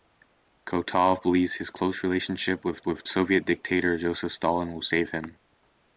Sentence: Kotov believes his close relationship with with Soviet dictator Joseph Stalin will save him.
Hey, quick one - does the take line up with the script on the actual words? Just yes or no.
yes